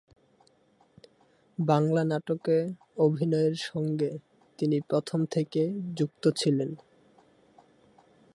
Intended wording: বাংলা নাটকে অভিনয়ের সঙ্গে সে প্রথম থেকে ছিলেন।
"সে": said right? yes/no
no